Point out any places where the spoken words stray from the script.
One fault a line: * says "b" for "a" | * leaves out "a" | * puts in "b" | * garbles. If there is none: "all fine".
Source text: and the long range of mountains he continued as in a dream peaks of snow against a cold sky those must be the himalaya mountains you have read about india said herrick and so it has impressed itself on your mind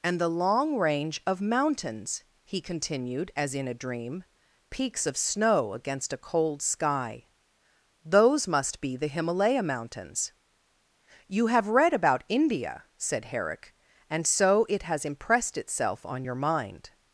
all fine